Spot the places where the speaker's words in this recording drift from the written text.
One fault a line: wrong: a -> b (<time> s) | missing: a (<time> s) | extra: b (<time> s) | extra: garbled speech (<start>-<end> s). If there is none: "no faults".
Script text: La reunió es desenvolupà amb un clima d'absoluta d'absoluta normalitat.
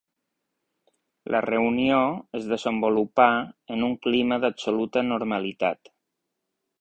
wrong: amb -> en (3.8 s)
missing: d'absoluta (5.0 s)